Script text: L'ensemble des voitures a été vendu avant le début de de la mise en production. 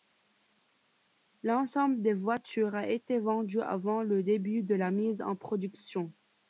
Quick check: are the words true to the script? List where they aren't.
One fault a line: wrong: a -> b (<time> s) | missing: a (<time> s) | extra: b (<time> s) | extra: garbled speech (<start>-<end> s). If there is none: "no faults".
missing: de (4.7 s)